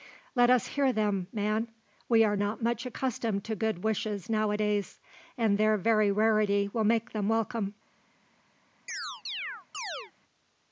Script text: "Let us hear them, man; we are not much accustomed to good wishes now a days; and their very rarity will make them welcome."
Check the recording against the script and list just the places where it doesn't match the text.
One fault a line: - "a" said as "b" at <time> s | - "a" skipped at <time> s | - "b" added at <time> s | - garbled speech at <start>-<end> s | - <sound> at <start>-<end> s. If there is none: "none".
- chirp at 8.9-10.1 s